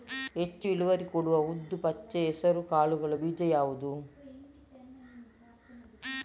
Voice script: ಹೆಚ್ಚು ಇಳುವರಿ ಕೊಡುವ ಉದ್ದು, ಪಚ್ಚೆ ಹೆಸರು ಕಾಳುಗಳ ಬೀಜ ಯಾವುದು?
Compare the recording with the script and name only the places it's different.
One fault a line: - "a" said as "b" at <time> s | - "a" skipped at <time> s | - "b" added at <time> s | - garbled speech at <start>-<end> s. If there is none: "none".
none